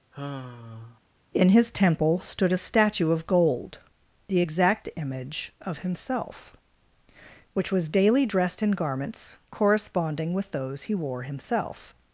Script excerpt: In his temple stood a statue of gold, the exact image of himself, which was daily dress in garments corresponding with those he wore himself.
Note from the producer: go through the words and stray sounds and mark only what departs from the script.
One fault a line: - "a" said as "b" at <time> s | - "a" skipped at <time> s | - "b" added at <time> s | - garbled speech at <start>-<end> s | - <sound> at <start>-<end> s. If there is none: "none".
- sigh at 0.1-1.0 s
- "dress" said as "dressed" at 8.3 s